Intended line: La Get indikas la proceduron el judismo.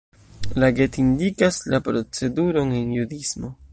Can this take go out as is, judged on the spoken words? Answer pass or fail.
fail